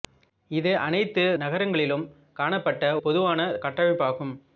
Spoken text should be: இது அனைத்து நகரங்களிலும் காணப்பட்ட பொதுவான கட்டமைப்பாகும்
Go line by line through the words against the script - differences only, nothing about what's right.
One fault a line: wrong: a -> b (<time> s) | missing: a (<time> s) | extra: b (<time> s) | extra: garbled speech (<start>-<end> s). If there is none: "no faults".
no faults